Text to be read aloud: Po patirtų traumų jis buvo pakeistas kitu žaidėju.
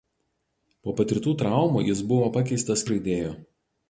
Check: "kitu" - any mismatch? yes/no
yes